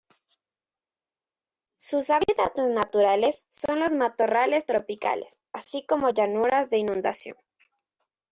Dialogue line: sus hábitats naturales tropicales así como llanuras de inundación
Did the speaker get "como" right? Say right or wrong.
right